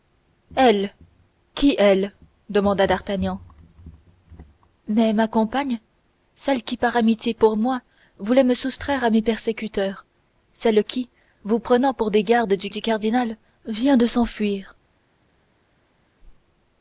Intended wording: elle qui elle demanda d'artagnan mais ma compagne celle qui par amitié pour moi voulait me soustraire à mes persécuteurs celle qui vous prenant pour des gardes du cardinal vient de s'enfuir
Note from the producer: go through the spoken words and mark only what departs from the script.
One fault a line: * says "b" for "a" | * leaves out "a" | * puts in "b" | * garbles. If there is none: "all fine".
* puts in "du"